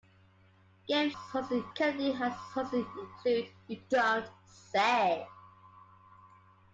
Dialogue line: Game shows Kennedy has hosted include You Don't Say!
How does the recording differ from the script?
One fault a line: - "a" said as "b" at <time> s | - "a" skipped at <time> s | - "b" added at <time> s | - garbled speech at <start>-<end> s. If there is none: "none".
- "shows" said as "hosted" at 1.1 s